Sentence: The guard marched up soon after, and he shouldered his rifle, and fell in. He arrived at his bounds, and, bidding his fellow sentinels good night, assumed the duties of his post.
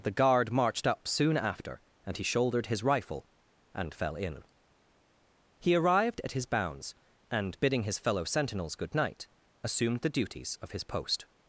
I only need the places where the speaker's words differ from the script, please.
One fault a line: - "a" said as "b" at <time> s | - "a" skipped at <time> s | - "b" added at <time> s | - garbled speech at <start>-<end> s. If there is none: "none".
none